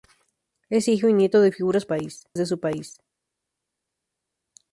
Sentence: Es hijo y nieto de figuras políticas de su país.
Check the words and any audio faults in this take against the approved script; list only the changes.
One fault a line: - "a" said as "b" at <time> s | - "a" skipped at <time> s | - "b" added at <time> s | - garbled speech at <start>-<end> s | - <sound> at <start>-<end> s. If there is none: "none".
- "políticas" said as "país" at 1.9 s